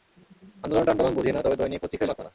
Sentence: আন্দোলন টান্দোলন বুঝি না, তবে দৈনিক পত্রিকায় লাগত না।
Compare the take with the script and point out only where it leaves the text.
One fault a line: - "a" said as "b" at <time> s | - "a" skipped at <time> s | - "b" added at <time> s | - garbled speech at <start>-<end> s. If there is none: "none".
none